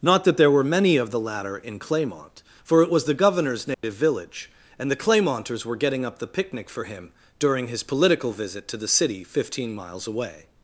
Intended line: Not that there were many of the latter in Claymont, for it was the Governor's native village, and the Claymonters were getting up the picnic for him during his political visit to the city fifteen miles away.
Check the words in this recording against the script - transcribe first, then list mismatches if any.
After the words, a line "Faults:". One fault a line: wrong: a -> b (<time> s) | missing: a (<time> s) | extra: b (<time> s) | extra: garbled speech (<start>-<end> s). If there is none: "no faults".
Not that there were many of the latter in Claymont, for it was the Governor's native village, and the Claymonters were getting up the picnic for him during his political visit to the city fifteen miles away.
Faults:
no faults